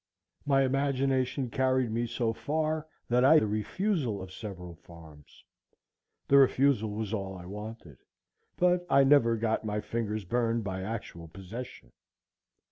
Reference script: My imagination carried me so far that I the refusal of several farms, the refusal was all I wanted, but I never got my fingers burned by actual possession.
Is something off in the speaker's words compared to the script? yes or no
no